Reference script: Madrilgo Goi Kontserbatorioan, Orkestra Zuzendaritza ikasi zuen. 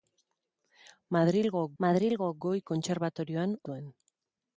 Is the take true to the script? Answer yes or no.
no